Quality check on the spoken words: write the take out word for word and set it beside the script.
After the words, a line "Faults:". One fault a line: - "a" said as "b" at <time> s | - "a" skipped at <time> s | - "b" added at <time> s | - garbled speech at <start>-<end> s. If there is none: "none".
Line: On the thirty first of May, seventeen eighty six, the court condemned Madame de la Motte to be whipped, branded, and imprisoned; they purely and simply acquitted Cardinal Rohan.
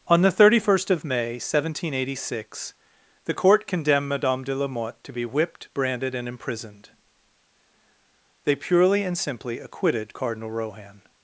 On the thirty first of May, seventeen eighty six, the court condemned Madame de la Motte to be whipped, branded, and imprisoned; they purely and simply acquitted Cardinal Rohan.
Faults:
none